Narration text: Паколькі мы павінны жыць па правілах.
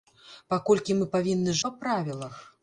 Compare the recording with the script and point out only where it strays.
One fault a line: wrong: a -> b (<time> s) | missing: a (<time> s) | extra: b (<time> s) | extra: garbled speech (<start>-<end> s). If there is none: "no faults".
missing: жыць (1.6 s)